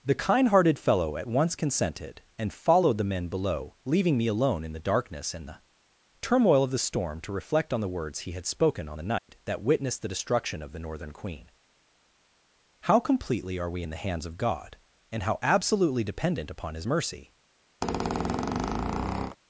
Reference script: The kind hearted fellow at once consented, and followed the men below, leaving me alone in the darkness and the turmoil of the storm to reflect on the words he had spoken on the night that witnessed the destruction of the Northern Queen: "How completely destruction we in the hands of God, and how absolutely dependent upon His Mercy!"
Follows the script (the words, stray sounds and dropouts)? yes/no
no